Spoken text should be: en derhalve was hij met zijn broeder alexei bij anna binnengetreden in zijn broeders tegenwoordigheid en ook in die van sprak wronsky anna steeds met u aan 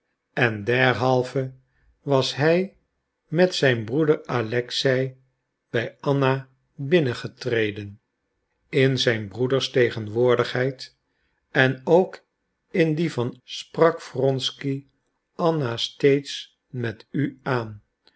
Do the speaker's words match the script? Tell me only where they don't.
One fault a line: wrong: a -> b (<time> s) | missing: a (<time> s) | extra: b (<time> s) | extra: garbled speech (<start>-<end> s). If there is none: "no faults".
no faults